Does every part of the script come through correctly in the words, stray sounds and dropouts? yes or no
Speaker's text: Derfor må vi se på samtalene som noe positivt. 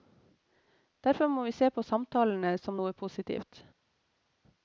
yes